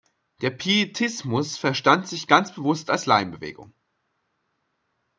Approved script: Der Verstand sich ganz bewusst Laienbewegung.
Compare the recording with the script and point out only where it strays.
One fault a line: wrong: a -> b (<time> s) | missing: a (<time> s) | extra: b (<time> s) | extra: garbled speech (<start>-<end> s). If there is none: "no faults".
extra: Pietismus (0.5 s)
extra: als (2.9 s)